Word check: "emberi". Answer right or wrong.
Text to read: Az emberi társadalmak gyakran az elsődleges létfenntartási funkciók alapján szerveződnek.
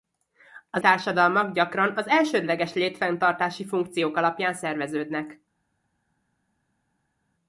wrong